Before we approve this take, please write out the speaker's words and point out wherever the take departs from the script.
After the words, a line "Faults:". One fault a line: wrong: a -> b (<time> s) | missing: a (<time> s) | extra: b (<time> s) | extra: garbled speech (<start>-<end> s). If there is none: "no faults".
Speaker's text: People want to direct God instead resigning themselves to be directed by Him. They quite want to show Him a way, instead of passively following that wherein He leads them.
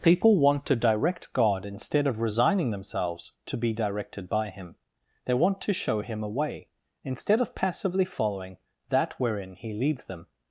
People want to direct God instead of resigning themselves to be directed by Him. They want to show Him a way, instead of passively following that wherein He leads them.
Faults:
extra: of (2.1 s)
missing: quite (5.3 s)